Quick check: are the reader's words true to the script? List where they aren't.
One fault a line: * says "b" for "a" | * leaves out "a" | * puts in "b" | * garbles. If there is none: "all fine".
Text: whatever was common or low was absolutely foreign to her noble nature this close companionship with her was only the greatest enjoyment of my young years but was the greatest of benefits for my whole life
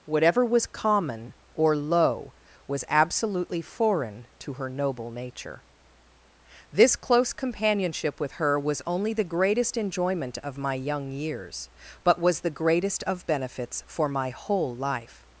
all fine